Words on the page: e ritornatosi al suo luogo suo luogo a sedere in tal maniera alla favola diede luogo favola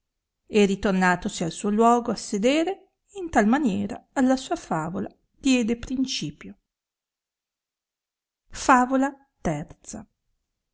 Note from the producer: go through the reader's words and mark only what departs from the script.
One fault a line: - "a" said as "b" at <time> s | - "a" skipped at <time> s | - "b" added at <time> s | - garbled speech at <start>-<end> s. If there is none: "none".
- "suo luogo" skipped at 2.1 s
- "sua" added at 4.3 s
- "luogo" said as "principio" at 5.8 s